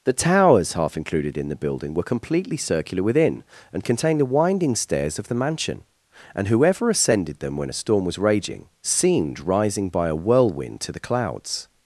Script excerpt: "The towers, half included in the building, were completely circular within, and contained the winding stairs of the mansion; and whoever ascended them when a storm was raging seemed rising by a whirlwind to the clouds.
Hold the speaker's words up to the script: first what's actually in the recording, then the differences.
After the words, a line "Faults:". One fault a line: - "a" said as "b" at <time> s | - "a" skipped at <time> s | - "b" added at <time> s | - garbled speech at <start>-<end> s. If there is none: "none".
"The towers, half included in the building, were completely circular within, and contained the winding stairs of the mansion; and whoever ascended them when a storm was raging seemed rising by a whirlwind to the clouds.
Faults:
none